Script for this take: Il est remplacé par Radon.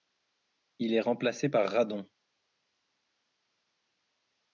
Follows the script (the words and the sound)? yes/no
yes